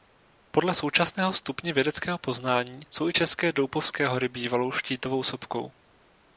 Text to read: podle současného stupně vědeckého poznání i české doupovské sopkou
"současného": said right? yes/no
yes